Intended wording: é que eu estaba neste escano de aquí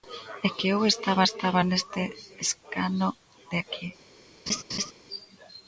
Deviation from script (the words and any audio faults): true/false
true